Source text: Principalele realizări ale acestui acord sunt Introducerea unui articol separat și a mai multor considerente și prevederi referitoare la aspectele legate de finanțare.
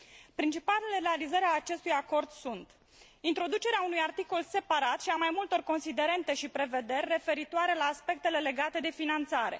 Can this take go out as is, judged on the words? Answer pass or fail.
pass